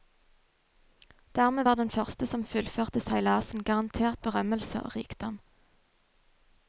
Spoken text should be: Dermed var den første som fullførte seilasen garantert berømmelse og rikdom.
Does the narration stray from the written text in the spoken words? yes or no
no